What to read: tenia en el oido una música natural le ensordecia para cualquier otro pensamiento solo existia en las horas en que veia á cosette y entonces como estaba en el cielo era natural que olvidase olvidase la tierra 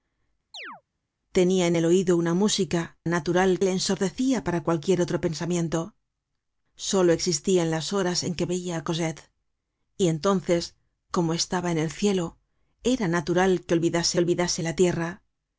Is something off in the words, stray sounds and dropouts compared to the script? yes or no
yes